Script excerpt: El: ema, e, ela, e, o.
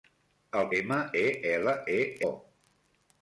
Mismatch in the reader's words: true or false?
false